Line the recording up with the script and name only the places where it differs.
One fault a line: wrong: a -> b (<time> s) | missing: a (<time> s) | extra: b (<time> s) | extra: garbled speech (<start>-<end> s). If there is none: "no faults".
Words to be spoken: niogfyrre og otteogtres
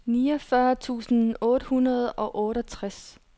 extra: tusind otte hundrede (0.8 s)